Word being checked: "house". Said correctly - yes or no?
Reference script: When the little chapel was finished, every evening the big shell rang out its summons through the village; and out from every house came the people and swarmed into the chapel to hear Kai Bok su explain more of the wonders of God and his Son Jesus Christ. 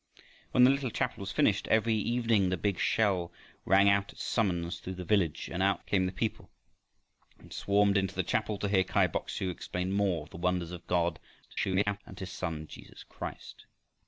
no